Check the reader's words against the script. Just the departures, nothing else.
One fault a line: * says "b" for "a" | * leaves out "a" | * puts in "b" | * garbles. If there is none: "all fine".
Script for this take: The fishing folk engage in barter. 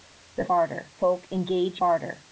* says "barter" for "fishing"
* leaves out "in"